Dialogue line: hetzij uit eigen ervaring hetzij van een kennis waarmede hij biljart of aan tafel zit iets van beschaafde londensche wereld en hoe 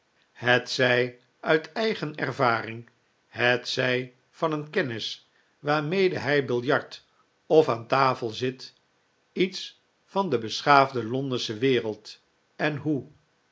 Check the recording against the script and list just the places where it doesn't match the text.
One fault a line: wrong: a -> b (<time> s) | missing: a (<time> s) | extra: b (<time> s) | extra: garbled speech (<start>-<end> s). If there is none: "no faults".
extra: de (10.3 s)